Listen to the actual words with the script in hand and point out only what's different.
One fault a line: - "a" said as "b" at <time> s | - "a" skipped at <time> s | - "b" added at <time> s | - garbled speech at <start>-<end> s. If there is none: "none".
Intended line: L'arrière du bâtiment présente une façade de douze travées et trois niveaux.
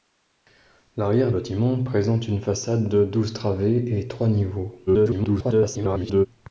- "du" skipped at 1.3 s
- garbled speech at 4.9-6.3 s